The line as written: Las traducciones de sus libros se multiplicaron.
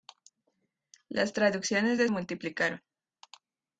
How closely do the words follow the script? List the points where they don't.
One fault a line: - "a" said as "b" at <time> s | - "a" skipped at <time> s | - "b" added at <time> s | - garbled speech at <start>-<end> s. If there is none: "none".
- "sus libros se" skipped at 2.1 s